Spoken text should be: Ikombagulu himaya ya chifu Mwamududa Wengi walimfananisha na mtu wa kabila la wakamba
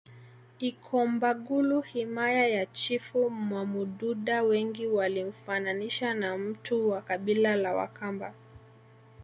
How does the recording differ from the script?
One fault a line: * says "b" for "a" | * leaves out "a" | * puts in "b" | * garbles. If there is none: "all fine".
all fine